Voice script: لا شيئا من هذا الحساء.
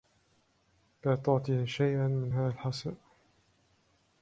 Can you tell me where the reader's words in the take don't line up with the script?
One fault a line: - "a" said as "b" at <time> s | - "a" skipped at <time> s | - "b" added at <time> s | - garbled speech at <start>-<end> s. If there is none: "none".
- "تعطه" added at 1.1 s